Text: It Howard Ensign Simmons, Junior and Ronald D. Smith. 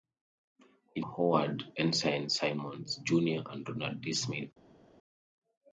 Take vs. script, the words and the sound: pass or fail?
pass